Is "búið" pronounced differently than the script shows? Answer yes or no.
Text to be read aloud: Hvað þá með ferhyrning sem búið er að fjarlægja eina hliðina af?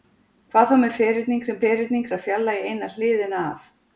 yes